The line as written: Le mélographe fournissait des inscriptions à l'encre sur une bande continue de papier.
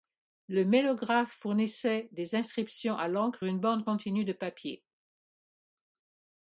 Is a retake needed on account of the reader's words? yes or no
yes